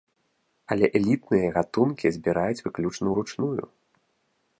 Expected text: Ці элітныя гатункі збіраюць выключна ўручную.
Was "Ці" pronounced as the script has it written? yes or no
no